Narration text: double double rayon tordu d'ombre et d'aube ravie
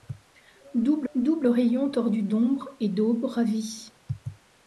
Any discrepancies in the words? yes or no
no